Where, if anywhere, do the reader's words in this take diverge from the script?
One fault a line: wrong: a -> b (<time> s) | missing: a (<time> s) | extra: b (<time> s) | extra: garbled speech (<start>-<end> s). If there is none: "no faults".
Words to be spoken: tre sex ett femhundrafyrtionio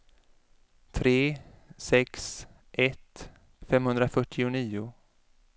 no faults